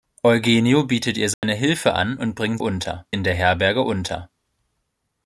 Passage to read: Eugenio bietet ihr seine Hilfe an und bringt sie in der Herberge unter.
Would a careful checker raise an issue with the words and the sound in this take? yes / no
yes